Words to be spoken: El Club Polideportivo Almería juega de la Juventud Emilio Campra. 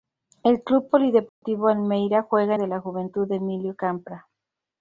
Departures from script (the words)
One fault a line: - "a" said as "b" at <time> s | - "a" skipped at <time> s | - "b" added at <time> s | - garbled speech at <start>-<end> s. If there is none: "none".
none